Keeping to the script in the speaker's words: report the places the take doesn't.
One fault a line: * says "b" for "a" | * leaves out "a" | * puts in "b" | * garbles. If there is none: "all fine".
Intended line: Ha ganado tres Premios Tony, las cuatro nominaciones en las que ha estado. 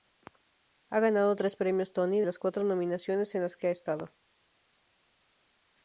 all fine